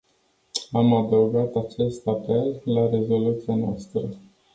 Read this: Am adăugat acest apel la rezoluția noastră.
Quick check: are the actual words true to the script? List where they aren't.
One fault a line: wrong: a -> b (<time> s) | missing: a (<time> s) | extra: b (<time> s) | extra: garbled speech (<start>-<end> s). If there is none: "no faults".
no faults